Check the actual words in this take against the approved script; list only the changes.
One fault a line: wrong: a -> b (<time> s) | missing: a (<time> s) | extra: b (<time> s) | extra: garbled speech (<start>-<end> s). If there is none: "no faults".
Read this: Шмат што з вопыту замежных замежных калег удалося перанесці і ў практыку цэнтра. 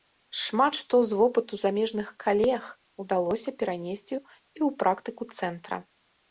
missing: замежных (2.1 s)